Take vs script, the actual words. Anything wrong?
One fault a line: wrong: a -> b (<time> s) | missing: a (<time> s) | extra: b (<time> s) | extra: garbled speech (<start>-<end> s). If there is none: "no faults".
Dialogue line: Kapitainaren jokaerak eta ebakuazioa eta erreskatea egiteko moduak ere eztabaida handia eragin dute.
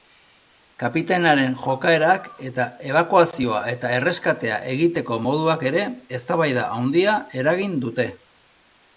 no faults